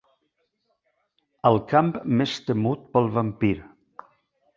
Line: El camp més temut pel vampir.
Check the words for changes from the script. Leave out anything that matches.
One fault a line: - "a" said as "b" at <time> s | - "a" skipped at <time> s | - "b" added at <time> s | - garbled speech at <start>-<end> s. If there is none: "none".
none